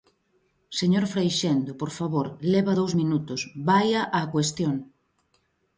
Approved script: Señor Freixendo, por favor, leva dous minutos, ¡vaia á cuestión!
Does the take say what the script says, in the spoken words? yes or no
yes